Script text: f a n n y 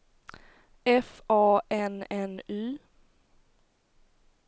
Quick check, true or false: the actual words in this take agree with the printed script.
true